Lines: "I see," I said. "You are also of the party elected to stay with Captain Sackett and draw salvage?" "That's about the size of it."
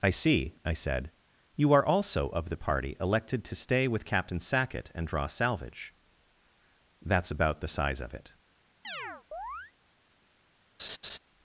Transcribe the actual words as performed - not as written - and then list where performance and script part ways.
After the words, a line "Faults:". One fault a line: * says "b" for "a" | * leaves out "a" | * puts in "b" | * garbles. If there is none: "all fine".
"I see," I said. "You are also of the party elected to stay with Captain Sackett and draw salvage?" "That's about the size of it."
Faults:
all fine